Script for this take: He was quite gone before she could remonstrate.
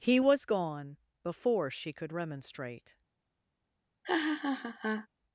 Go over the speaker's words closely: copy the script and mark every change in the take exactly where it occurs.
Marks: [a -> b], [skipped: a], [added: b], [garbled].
He was [skipped: quite] gone before she could remonstrate.